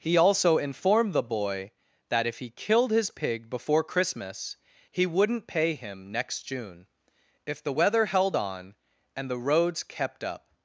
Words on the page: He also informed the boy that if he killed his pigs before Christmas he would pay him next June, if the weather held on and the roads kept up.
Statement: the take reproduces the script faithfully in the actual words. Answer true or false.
false